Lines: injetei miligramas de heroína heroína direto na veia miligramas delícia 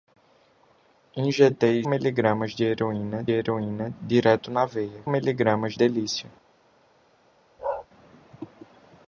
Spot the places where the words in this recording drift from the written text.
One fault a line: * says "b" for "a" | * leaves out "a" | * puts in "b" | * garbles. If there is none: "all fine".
all fine